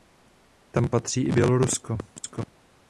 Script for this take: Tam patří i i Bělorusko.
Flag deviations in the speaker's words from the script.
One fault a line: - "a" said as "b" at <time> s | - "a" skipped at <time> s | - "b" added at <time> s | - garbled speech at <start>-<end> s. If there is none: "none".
- "i" skipped at 1.3 s